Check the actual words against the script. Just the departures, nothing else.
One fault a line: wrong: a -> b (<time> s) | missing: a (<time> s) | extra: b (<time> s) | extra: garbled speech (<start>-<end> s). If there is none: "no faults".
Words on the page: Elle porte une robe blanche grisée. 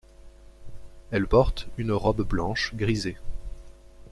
no faults